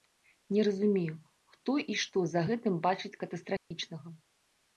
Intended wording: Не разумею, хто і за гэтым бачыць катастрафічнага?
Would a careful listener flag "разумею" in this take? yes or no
no